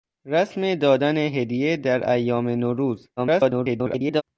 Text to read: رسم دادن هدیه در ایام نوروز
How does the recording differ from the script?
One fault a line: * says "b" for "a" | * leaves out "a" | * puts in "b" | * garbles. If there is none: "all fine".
* garbles